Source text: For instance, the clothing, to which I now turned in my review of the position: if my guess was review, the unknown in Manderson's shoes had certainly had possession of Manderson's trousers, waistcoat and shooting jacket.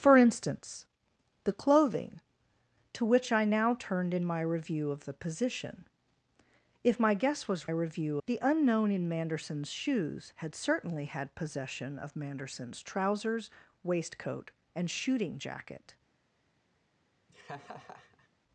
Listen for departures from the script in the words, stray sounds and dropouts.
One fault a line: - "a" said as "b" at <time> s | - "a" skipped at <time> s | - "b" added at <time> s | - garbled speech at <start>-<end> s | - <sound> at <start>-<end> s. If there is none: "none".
- laugh at 17.3-18.3 s